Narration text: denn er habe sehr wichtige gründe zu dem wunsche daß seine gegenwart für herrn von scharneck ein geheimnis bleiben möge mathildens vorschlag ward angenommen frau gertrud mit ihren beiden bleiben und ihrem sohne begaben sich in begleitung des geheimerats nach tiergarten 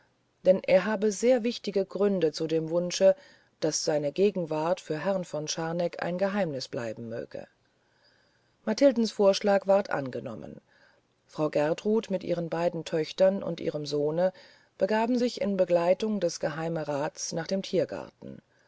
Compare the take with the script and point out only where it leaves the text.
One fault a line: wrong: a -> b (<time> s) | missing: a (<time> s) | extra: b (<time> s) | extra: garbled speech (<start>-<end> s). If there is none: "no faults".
wrong: bleiben -> töchtern (12.8 s)
extra: dem (17.4 s)